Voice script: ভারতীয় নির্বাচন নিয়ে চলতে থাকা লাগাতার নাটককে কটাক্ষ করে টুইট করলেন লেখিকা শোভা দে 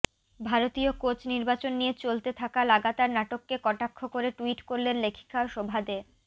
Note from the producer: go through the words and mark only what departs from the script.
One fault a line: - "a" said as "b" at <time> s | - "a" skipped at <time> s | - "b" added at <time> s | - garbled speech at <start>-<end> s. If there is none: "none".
- "কোচ" added at 1.0 s